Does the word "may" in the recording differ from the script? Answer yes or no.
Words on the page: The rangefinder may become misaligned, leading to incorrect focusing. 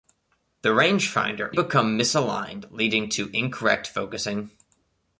yes